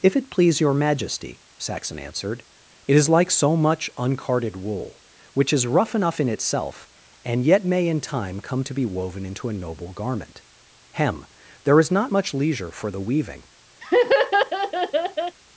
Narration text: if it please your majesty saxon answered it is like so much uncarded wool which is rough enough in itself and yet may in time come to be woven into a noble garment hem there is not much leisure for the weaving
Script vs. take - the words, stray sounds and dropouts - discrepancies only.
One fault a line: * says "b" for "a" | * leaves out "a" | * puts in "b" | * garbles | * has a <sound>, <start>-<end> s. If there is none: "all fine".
* has a laugh, 13.8-15.4 s